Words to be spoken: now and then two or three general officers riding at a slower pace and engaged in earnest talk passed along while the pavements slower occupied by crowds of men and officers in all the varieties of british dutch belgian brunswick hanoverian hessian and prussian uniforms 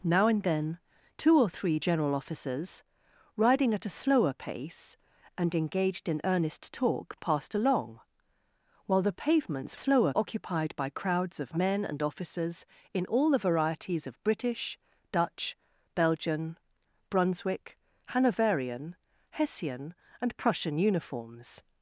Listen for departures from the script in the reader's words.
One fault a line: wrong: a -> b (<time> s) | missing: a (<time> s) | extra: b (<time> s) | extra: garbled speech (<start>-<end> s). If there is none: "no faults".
no faults